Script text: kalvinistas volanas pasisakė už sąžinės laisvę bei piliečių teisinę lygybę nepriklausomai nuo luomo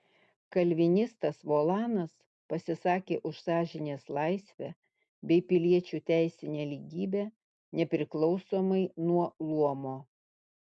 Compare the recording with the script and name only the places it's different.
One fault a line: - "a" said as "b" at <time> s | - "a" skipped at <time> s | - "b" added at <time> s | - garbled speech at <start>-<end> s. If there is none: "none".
none